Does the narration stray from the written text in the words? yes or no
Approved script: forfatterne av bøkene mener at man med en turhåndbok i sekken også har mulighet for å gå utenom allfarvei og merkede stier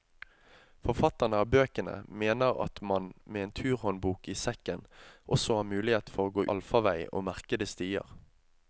yes